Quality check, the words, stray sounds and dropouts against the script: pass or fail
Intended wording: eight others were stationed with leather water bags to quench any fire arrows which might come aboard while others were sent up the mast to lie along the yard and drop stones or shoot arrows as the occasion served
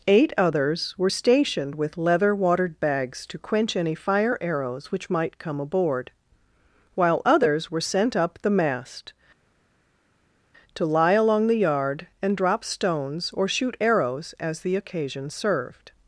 fail